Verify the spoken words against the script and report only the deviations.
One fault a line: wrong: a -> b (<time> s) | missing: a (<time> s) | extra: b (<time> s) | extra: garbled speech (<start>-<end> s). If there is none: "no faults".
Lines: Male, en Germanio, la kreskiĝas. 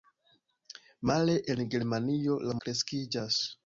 no faults